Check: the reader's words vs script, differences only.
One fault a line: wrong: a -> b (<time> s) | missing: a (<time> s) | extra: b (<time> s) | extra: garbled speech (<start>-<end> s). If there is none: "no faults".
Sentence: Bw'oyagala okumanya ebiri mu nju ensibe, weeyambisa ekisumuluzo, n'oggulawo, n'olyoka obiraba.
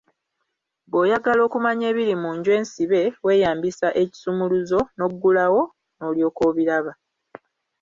no faults